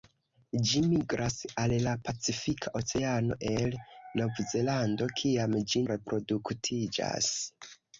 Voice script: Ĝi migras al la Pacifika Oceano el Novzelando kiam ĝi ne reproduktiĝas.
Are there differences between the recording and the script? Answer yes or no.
yes